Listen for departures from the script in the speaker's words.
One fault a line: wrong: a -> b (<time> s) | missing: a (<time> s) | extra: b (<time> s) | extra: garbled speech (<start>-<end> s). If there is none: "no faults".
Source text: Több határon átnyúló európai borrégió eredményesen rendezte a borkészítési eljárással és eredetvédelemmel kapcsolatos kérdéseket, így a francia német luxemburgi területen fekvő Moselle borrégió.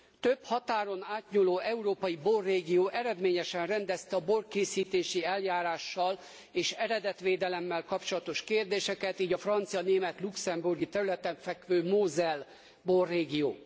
no faults